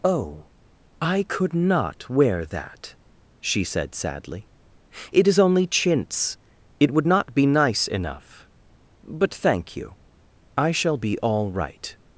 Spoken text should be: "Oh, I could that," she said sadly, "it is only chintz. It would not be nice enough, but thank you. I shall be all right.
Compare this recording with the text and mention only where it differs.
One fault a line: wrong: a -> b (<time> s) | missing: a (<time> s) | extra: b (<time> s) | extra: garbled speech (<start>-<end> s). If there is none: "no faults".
extra: not wear (1.5 s)